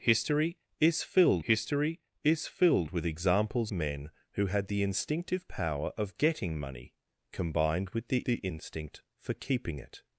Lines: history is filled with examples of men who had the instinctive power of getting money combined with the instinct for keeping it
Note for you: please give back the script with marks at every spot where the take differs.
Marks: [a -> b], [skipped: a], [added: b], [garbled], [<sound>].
history is filled [added: history is filled] with examples [skipped: of] men who had the instinctive power of getting money combined with the [added: the] instinct for keeping it